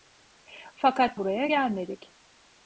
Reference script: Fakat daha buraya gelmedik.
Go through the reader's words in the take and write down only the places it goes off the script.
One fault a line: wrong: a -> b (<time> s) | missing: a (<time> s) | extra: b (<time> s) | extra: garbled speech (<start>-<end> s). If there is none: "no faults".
missing: daha (1.2 s)